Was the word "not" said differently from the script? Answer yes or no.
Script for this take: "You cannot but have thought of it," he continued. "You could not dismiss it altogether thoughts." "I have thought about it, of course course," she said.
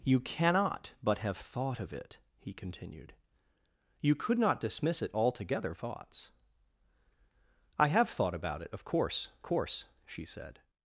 no